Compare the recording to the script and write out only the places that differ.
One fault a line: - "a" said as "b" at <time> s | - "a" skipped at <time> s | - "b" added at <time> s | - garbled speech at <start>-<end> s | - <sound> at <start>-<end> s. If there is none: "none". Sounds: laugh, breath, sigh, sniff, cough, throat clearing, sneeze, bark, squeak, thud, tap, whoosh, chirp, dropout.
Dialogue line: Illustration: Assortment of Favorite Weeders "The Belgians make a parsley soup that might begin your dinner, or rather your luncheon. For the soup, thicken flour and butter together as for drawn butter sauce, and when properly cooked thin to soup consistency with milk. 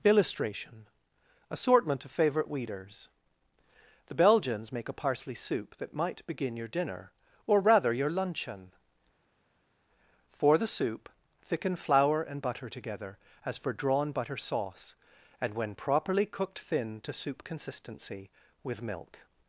none